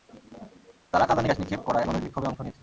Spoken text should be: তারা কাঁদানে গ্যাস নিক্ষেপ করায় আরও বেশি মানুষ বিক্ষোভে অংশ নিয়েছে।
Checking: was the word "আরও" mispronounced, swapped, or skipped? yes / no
yes